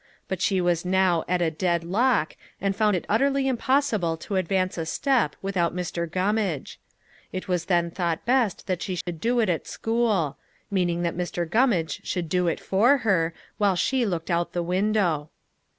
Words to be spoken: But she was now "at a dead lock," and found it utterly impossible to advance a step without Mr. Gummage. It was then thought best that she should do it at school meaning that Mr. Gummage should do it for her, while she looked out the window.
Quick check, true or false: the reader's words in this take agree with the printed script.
true